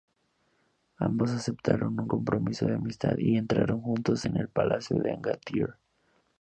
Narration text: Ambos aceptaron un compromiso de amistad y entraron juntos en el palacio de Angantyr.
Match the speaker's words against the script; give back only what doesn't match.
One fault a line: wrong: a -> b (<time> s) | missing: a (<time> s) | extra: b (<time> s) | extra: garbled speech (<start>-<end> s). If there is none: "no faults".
no faults